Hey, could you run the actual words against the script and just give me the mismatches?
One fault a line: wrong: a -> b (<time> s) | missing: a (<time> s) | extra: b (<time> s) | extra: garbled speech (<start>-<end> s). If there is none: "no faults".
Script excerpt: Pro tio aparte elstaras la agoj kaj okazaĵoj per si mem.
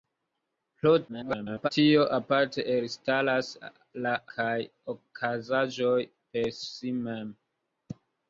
extra: garbled speech (1.1-1.7 s)
missing: agoj (4.1 s)